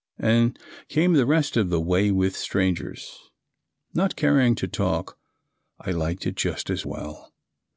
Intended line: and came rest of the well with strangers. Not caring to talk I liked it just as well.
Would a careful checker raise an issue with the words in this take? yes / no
yes